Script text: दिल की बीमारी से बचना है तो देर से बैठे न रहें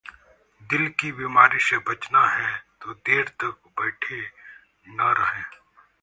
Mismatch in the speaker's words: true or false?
true